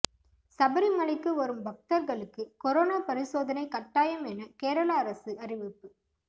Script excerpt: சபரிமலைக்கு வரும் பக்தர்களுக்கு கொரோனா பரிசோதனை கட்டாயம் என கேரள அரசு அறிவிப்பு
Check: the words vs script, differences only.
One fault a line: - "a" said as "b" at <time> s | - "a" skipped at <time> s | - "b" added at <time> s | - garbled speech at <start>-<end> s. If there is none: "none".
none